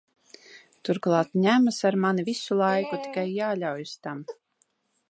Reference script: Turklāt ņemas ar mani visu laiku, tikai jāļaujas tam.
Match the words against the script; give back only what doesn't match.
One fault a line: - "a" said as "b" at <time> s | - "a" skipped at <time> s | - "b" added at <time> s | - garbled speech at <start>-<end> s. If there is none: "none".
none